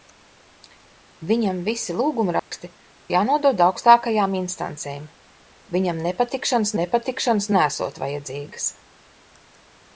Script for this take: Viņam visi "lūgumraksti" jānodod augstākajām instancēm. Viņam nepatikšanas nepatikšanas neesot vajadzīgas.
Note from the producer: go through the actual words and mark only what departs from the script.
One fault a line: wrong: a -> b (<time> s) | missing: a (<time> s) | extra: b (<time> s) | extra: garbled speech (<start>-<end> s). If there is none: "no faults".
no faults